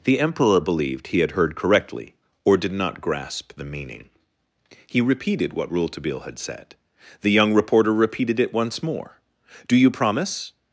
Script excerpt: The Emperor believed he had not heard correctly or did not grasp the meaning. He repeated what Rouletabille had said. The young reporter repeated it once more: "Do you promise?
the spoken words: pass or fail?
fail